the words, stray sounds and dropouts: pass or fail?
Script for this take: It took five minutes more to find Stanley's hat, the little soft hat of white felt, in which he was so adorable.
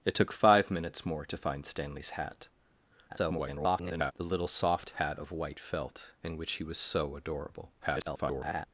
fail